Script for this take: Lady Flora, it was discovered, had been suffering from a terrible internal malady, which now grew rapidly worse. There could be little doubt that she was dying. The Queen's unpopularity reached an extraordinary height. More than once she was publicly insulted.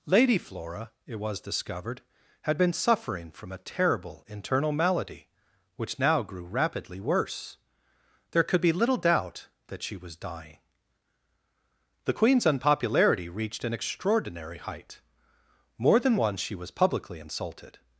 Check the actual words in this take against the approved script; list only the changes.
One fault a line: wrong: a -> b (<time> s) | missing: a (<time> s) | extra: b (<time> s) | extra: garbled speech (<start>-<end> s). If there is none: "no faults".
no faults